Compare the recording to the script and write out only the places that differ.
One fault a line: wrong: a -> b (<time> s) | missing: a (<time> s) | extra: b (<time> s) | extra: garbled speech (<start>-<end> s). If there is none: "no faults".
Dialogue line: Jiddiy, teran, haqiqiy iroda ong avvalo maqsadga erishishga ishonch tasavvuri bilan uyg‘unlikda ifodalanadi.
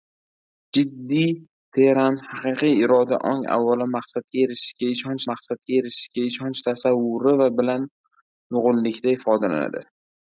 extra: maqsadga erishishga ishonch (5.3 s)